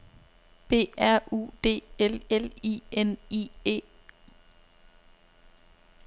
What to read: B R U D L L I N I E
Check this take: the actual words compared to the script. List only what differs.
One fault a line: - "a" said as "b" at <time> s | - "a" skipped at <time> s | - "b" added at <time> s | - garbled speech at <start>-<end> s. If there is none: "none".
none